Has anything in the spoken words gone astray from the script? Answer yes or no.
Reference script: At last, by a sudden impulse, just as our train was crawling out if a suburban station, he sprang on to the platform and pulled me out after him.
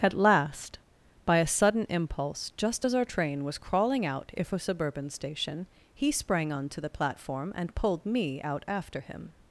no